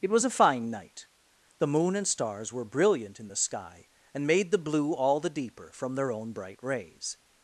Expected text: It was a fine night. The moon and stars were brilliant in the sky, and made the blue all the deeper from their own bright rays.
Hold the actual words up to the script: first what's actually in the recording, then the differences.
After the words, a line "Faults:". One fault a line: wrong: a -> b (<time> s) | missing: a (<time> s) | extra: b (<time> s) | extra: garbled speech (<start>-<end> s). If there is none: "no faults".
It was a fine night. The moon and stars were brilliant in the sky, and made the blue all the deeper from their own bright rays.
Faults:
no faults